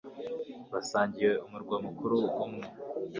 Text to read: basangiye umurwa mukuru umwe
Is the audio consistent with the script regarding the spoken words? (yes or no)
yes